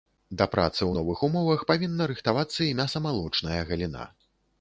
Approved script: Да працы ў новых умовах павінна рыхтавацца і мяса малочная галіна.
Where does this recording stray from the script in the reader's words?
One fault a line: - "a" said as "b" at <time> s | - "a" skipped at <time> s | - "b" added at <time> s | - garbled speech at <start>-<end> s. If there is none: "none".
none